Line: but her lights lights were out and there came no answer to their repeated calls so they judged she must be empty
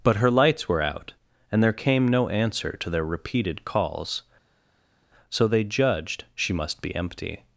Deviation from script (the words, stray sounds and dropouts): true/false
true